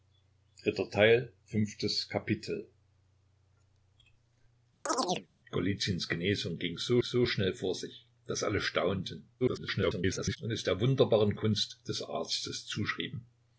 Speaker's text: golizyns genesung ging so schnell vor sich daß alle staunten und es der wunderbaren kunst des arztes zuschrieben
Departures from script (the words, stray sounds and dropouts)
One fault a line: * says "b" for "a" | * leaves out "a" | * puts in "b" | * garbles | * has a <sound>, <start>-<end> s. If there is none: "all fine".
* has a chirp, 4.9-5.3 s
* puts in "so"
* garbles